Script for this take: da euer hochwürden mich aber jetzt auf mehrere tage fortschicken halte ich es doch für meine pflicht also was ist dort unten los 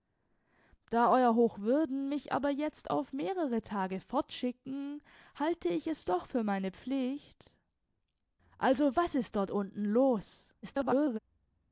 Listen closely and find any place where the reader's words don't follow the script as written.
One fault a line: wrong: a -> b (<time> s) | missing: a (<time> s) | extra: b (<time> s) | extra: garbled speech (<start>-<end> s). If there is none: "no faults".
extra: garbled speech (10.6-11.2 s)